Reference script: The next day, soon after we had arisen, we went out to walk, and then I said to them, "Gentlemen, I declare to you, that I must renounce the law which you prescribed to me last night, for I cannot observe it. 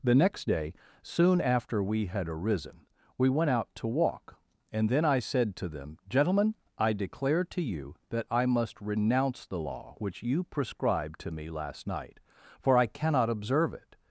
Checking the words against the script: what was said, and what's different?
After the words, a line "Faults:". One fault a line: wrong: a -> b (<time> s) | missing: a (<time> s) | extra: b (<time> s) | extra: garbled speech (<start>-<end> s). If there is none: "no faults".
The next day, soon after we had arisen, we went out to walk, and then I said to them, "Gentlemen, I declare to you, that I must renounce the law which you prescribed to me last night, for I cannot observe it.
Faults:
no faults